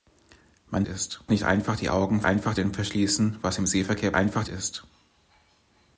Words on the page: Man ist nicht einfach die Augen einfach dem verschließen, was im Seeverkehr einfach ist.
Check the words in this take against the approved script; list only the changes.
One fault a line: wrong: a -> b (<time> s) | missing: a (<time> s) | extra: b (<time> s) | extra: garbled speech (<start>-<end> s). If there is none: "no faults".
no faults